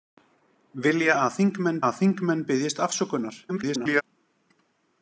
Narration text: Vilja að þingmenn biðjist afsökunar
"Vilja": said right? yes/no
yes